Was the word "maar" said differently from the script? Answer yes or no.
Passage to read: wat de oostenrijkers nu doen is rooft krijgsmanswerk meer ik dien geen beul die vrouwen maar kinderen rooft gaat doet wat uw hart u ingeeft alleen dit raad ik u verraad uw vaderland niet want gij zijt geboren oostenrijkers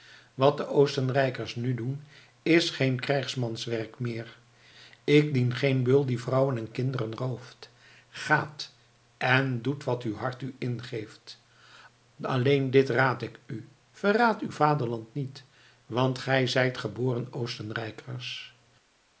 yes